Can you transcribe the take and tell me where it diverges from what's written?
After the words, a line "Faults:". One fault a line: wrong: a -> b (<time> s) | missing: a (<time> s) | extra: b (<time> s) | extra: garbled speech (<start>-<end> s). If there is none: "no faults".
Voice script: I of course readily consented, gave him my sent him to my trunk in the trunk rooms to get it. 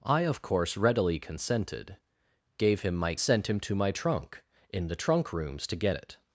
I of course readily consented, gave him my sent him to my trunk in the trunk rooms to get it.
Faults:
no faults